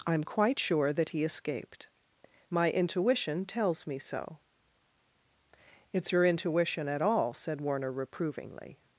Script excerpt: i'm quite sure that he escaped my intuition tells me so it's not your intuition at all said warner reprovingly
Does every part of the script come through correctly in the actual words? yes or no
no